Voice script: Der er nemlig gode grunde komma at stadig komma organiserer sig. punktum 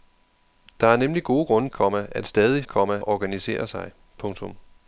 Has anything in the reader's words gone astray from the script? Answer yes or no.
no